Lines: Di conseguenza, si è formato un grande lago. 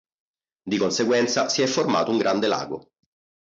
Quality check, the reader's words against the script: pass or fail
pass